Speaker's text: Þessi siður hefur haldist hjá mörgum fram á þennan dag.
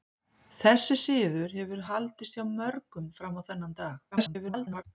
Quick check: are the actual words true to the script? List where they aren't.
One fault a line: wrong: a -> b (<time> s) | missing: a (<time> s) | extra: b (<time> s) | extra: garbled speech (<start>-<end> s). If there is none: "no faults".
extra: garbled speech (4.1-4.8 s)